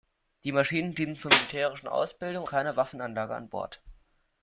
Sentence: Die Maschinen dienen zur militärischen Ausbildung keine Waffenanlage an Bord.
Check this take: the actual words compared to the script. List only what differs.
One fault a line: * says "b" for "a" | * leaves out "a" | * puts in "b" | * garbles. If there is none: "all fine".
all fine